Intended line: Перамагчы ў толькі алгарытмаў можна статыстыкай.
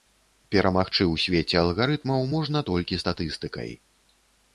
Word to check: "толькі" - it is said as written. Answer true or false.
false